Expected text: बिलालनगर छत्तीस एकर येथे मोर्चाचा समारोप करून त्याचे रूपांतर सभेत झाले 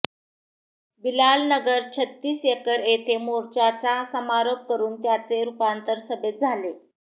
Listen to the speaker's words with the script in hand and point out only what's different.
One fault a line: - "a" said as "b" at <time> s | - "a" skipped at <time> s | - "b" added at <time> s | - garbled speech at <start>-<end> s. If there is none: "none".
none